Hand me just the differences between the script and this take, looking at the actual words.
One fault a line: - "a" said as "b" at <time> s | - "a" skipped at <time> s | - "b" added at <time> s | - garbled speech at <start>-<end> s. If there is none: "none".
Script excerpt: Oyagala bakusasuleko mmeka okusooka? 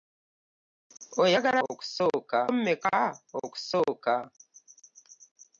- "bakusasuleko" said as "okusooka" at 1.7 s